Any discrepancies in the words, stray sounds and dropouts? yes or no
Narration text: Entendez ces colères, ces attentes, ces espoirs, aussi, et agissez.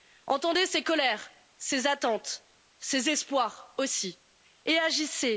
no